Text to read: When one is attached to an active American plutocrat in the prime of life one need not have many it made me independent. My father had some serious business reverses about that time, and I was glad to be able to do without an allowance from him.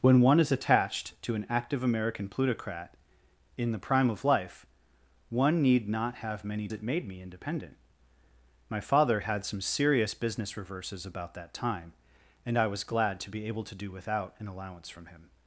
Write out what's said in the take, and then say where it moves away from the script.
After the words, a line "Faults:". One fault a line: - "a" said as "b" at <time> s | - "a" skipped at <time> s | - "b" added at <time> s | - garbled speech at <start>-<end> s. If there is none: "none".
When one is attached to an active American plutocrat in the prime of life one need not have many it made me independent. My father had some serious business reverses about that time, and I was glad to be able to do without an allowance from him.
Faults:
none